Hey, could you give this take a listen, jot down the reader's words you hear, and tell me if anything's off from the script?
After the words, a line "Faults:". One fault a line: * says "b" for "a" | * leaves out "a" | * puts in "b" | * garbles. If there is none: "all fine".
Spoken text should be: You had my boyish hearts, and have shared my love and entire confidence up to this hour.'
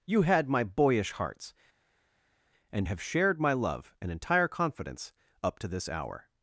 You had my boyish hearts, and have shared my love and entire confidence up to this hour.'
Faults:
all fine